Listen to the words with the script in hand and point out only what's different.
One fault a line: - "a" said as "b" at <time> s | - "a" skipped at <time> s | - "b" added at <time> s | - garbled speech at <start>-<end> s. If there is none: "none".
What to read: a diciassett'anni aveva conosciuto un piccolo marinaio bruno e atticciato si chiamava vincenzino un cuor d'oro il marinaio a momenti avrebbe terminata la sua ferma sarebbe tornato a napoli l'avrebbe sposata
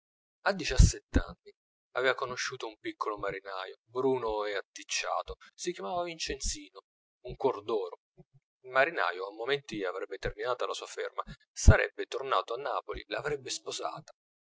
none